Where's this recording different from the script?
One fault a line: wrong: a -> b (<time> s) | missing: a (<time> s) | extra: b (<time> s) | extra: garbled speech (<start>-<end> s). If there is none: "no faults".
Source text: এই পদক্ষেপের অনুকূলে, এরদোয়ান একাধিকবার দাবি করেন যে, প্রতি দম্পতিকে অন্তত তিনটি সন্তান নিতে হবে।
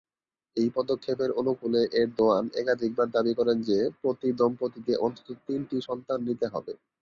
no faults